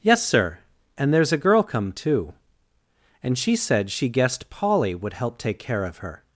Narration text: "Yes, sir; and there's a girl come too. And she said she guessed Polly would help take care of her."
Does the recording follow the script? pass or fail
pass